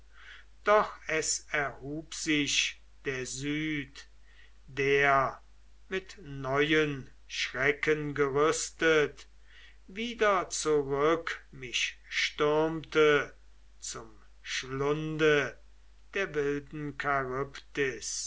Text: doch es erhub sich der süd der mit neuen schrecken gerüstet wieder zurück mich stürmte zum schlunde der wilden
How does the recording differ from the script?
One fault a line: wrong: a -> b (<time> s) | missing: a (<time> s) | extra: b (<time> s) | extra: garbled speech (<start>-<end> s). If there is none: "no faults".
no faults